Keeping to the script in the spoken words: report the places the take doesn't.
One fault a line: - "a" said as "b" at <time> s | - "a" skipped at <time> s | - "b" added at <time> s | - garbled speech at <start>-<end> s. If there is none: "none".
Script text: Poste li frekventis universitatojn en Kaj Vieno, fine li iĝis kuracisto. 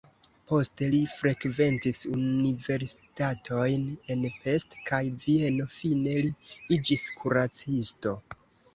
- "Pest" added at 4.4 s